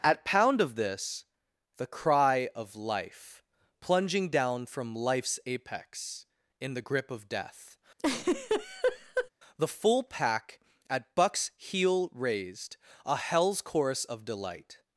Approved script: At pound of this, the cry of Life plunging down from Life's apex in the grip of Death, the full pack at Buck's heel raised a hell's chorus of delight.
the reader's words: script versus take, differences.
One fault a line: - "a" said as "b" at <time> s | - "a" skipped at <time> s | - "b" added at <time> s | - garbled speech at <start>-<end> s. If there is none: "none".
none